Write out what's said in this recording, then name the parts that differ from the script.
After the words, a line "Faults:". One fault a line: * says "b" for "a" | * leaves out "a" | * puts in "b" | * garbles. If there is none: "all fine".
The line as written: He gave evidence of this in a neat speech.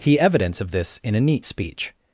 He evidence of this in a neat speech.
Faults:
* leaves out "gave"